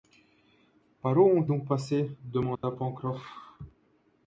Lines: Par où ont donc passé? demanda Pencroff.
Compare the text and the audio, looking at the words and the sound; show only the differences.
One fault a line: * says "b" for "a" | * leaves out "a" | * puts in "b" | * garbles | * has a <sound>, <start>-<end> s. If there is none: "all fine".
* has a dropout, 2.6-2.6 s